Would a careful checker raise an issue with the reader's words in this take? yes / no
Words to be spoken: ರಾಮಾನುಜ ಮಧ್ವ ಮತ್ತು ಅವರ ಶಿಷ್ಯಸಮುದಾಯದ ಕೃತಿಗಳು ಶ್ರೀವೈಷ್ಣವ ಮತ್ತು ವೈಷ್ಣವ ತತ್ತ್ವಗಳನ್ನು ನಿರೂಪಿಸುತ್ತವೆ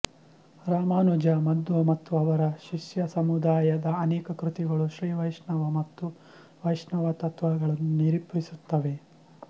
yes